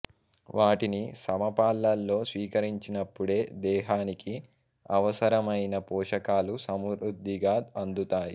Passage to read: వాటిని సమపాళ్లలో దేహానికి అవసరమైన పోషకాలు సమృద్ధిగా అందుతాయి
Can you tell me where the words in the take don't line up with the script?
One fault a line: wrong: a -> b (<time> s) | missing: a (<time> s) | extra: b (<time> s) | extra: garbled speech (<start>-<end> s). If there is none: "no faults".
extra: స్వీకరించినప్పుడే (2.3 s)